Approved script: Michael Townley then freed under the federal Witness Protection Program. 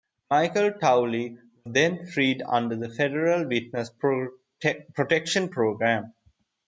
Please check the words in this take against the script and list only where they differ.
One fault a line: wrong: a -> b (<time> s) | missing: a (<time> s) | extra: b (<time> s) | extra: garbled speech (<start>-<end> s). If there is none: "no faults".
no faults